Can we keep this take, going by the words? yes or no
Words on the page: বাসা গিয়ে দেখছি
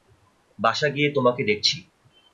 no